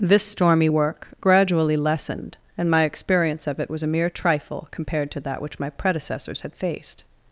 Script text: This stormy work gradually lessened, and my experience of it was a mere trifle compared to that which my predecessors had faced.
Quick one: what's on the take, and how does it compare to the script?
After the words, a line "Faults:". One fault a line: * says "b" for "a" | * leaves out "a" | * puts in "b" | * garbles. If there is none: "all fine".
This stormy work gradually lessened, and my experience of it was a mere trifle compared to that which my predecessors had faced.
Faults:
all fine